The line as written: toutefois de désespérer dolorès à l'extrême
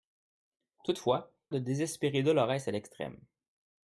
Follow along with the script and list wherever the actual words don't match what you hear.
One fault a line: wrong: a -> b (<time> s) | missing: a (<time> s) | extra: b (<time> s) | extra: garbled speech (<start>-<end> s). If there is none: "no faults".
no faults